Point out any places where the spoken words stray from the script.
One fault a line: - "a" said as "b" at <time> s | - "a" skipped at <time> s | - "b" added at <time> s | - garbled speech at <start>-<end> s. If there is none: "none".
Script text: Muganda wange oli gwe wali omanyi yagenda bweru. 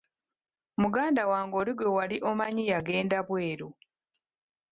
none